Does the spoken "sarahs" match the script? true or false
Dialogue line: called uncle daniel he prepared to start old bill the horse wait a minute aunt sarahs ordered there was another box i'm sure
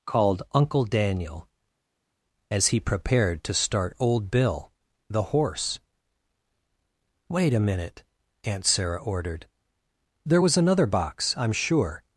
false